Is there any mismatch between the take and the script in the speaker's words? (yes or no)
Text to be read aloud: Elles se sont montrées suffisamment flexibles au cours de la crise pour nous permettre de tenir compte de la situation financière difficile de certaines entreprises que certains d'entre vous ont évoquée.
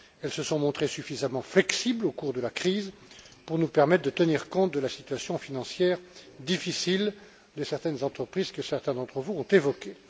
no